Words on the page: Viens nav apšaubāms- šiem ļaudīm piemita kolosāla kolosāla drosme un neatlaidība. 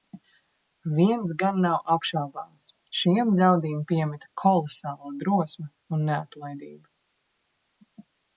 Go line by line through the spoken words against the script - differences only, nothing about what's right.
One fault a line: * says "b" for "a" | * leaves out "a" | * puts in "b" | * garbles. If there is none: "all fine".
* puts in "gan"
* leaves out "kolosāla"